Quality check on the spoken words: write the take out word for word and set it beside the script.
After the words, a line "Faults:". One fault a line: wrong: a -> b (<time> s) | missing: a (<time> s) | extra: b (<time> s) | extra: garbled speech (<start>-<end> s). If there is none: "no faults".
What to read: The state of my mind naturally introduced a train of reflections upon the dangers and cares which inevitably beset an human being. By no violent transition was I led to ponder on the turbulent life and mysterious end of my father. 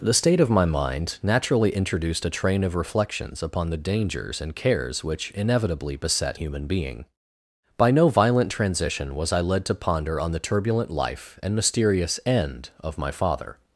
The state of my mind naturally introduced a train of reflections upon the dangers and cares which inevitably beset human being. By no violent transition was I led to ponder on the turbulent life and mysterious end of my father.
Faults:
missing: an (6.4 s)